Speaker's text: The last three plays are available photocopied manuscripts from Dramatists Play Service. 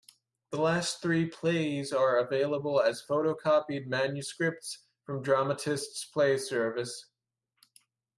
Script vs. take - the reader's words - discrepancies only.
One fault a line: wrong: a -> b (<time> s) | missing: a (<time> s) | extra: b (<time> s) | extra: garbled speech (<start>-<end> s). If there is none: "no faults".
extra: as (2.8 s)